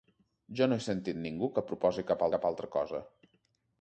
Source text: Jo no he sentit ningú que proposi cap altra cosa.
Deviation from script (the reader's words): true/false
true